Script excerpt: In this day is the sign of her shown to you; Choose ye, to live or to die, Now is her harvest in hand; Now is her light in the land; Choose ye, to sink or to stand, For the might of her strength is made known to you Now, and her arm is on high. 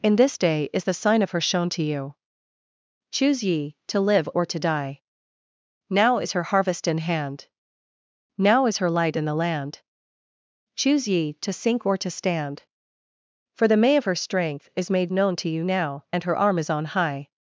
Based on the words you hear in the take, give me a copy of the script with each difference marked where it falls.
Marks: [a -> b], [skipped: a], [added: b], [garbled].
In this day is the sign of her shown to you; Choose ye, to live or to die, Now is her harvest in hand; Now is her light in the land; Choose ye, to sink or to stand, For the [might -> may] of her strength is made known to you Now, and her arm is on high.